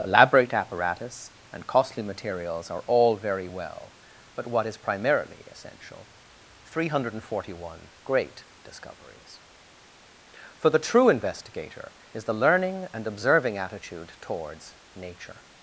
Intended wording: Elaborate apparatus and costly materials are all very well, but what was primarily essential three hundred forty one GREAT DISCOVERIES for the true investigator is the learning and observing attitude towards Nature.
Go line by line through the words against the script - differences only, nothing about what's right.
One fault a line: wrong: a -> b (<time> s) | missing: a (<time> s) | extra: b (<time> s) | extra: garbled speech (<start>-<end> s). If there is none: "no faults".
wrong: was -> is (4.6 s)